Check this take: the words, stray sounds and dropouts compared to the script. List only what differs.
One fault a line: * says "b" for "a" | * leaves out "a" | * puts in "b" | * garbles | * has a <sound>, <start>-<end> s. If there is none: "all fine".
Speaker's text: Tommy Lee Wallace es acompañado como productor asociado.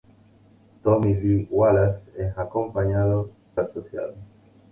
* leaves out "como productor"